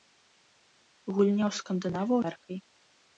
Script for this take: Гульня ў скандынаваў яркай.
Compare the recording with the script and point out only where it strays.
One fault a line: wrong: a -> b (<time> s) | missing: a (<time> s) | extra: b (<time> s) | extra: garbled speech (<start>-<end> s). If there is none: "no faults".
no faults